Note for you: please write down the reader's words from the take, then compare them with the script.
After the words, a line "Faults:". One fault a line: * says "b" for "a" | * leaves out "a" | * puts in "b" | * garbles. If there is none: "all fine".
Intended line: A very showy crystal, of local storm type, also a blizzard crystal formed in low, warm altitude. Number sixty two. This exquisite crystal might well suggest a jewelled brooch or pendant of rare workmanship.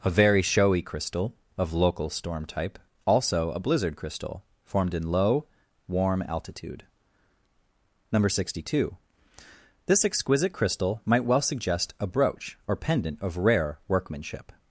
A very showy crystal, of local storm type, also a blizzard crystal formed in low, warm altitude. Number sixty two. This exquisite crystal might well suggest a brooch or pendant of rare workmanship.
Faults:
* leaves out "jewelled"